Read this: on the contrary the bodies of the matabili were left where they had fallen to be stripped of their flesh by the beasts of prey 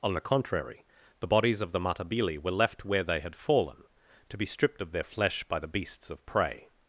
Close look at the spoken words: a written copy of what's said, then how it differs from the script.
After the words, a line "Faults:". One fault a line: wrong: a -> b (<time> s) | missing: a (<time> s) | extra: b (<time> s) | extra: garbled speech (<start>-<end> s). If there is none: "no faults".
on the contrary the bodies of the matabili were left where they had fallen to be stripped of their flesh by the beasts of prey
Faults:
no faults